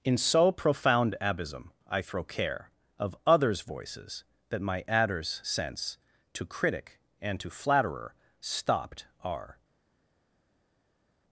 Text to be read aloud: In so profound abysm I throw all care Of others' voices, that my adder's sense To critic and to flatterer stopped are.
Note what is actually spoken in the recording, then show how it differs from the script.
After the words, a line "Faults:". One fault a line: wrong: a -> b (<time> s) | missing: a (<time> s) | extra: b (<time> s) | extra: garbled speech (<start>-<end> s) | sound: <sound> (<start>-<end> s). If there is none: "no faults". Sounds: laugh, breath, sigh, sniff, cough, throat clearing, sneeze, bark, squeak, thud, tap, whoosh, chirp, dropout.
In so profound abysm I throw care Of others' voices, that my adder's sense To critic and to flatterer stopped are.
Faults:
missing: all (2.2 s)